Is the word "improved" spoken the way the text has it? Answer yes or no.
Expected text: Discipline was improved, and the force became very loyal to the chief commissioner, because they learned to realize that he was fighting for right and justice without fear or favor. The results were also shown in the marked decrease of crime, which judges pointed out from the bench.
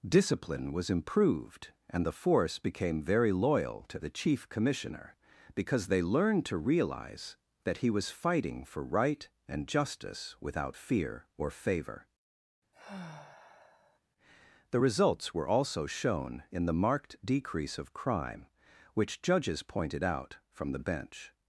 yes